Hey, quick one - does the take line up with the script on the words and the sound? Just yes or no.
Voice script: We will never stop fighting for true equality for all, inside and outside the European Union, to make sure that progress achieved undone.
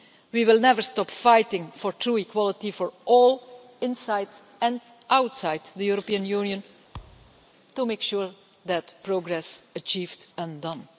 no